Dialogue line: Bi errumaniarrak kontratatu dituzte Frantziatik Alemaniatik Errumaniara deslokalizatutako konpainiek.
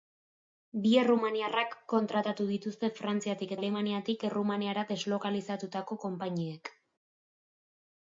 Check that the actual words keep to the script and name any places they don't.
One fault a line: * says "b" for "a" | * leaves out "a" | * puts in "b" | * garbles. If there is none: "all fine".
all fine